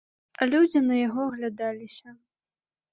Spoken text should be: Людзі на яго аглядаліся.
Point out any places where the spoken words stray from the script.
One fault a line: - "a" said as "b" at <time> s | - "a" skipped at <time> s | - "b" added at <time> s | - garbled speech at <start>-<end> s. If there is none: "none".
none